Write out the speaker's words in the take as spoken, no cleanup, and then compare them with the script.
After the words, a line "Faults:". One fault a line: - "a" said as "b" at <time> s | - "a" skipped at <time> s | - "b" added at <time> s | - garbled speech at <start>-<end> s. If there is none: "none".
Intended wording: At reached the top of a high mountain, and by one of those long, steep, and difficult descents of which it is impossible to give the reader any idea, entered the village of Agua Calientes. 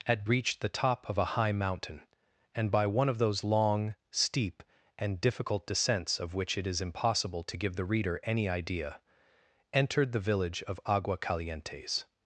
At reached the top of a high mountain, and by one of those long, steep, and difficult descents of which it is impossible to give the reader any idea, entered the village of Agua Calientes.
Faults:
none